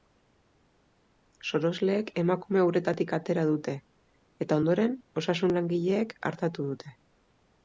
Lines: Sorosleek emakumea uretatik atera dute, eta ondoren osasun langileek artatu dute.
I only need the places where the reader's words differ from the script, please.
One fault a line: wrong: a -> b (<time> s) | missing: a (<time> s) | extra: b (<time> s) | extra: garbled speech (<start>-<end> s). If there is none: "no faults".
no faults